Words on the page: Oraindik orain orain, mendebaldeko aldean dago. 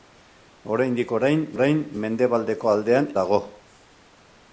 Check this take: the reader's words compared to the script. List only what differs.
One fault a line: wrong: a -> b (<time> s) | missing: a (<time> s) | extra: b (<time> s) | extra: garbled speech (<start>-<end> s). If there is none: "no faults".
no faults